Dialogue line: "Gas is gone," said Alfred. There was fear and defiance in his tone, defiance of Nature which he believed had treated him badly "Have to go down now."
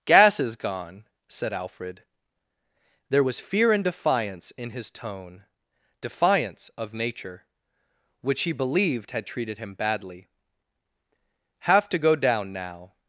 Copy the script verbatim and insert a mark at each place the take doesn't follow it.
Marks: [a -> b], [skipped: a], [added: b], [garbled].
"Gas is gone," said Alfred. There was fear and defiance in his tone, defiance of Nature which he believed had treated him badly "Have to go down now."